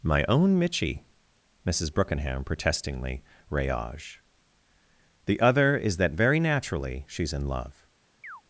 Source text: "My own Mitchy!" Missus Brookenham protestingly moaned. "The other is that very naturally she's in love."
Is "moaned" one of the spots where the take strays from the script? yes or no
yes